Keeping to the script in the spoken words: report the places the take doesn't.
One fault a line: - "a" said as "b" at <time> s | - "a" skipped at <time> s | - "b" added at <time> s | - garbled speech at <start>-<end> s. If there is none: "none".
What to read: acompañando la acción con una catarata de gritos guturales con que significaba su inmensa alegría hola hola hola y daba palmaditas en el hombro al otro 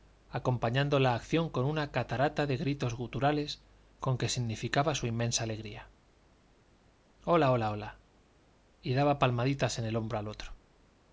none